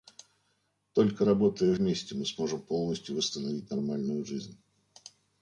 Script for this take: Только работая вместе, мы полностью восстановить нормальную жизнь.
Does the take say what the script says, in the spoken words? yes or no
no